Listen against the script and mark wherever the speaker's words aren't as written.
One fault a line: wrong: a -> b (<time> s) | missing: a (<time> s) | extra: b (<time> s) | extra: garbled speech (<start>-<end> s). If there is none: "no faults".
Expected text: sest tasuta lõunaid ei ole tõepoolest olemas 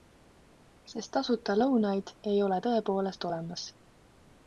no faults